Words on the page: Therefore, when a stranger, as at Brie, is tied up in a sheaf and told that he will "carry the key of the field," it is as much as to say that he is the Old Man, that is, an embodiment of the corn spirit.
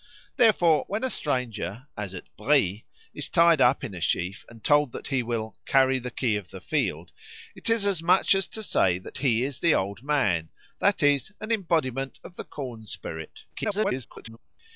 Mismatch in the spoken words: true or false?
true